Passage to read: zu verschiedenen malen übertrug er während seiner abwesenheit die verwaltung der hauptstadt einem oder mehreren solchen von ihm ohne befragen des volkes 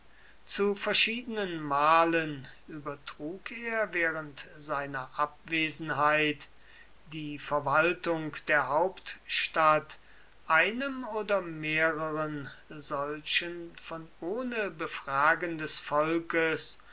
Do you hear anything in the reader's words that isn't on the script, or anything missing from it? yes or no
yes